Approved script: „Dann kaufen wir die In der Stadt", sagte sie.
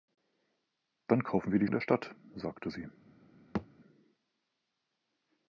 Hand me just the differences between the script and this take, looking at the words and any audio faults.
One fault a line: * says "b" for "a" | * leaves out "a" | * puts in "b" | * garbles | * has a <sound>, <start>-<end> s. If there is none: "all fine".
* has a thud, 3.5-3.7 s